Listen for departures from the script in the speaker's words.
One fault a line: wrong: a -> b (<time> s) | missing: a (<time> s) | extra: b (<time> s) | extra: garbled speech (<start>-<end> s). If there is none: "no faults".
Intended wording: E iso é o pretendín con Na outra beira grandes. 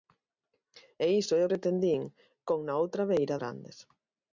no faults